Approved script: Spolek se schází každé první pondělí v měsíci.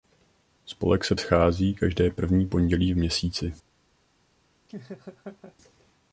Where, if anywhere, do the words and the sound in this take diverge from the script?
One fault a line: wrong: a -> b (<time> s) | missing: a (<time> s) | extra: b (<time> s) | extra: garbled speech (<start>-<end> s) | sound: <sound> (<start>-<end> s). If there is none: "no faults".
sound: laugh (4.7-5.6 s)